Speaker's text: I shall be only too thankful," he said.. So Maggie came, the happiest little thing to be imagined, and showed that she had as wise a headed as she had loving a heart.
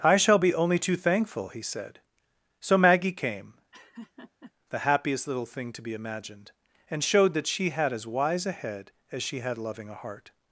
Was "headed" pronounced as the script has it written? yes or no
no